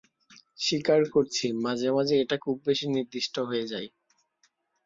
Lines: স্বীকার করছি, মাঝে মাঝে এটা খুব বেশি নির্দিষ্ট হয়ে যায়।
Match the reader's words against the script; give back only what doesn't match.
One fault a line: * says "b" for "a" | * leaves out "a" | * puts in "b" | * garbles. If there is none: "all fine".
all fine